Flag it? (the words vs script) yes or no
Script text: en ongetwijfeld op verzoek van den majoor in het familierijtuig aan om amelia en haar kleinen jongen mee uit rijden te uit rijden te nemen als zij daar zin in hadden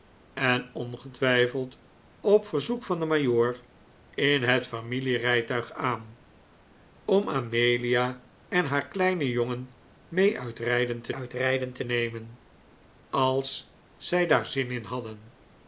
no